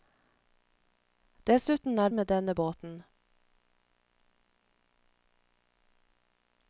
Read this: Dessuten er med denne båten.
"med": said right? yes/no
yes